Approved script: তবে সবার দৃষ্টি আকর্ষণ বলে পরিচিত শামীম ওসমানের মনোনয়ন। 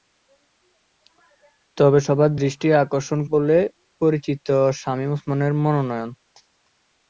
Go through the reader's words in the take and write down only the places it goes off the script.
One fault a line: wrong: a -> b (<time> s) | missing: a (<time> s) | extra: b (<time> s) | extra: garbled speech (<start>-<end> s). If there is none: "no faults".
no faults